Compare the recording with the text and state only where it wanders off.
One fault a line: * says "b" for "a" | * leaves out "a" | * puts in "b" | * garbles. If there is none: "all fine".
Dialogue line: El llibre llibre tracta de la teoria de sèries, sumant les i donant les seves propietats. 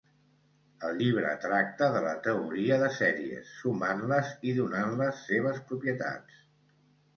* leaves out "llibre"